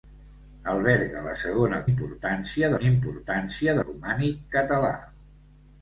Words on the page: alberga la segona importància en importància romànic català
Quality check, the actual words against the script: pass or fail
pass